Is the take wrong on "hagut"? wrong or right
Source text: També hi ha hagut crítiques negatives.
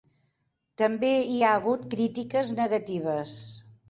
right